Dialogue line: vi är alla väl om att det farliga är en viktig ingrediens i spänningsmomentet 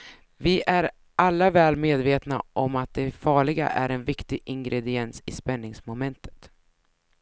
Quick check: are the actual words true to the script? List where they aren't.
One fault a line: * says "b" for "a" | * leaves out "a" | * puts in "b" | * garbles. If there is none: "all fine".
* puts in "medvetna"